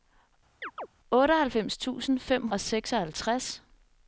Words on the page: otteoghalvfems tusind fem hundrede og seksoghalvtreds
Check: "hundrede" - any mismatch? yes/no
yes